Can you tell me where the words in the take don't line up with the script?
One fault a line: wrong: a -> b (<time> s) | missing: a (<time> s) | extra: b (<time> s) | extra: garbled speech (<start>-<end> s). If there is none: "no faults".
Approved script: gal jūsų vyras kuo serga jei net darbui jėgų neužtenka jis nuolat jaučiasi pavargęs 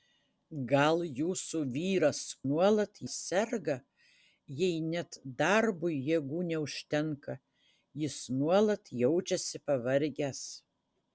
wrong: kuo -> nuolat (2.5 s)